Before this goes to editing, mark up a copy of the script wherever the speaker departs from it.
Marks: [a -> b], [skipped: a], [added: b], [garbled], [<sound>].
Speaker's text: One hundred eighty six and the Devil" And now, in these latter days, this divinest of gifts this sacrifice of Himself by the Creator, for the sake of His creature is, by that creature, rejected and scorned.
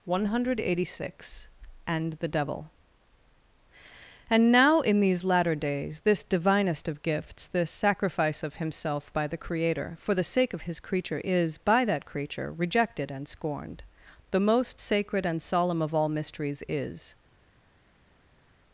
One hundred eighty six and the Devil" And now, in these latter days, this divinest of gifts this sacrifice of Himself by the Creator, for the sake of His creature is, by that creature, rejected and scorned. [added: The most sacred and solemn of all mysteries is]